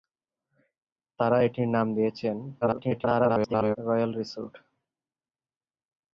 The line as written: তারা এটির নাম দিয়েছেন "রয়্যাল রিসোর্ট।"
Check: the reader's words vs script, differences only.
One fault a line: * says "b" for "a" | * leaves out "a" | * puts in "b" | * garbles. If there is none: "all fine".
* garbles